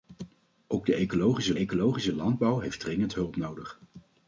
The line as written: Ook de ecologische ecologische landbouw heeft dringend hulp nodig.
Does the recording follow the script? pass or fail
pass